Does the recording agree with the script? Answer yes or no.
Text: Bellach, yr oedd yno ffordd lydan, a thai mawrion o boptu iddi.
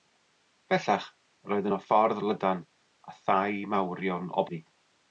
no